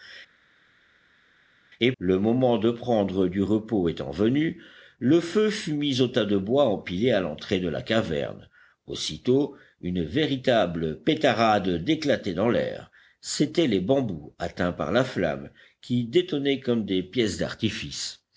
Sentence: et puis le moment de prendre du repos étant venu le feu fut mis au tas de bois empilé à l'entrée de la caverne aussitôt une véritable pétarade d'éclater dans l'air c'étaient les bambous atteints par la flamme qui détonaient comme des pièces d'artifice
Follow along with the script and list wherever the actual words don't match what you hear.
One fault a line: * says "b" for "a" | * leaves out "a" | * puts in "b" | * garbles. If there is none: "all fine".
* leaves out "puis"